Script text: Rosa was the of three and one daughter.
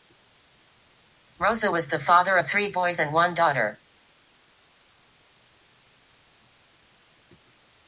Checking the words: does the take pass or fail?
fail